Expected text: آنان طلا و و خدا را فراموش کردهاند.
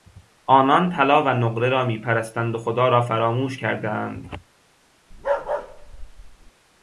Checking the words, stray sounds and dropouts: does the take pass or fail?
fail